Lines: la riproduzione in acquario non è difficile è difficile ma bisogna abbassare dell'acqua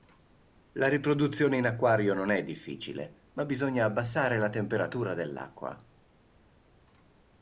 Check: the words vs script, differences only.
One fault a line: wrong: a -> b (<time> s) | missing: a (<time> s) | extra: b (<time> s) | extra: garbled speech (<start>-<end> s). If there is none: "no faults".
missing: è difficile (3.2 s)
extra: la temperatura (4.4 s)